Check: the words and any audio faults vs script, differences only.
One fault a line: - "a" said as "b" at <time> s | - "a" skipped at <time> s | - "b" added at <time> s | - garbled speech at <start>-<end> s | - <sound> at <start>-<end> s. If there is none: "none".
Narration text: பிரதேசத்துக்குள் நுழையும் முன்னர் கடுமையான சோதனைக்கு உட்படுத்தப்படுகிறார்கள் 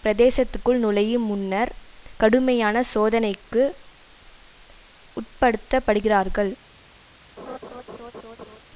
- laugh at 7.4-8.6 s